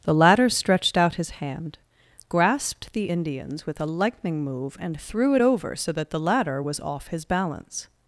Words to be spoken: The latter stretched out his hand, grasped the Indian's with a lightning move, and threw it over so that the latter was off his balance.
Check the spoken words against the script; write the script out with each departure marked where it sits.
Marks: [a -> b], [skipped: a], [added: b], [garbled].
The latter stretched out his hand, grasped the Indian's with a lightning move, and threw it over so that the latter was off his balance.